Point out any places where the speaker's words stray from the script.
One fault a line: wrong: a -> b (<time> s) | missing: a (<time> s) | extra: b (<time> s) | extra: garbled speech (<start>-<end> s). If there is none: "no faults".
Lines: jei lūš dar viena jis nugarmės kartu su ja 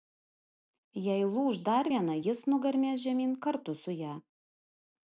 extra: žemyn (3.1 s)